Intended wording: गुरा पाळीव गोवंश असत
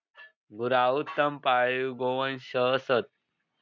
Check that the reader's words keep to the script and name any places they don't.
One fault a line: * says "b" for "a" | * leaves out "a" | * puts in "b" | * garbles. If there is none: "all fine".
* puts in "उत्तम"